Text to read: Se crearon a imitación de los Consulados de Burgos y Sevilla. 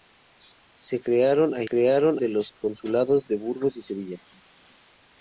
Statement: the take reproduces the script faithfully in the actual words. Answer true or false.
false